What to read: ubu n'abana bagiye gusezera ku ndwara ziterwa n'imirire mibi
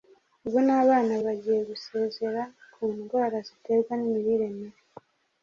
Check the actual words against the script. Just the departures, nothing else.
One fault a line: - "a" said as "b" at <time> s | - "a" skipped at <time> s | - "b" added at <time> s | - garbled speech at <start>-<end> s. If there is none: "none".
none